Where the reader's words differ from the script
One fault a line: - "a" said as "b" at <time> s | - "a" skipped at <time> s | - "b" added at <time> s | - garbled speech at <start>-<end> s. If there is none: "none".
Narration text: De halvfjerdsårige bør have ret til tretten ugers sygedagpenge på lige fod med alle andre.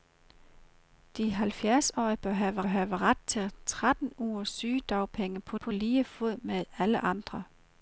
- "have" added at 2.7 s
- "på" added at 5.5 s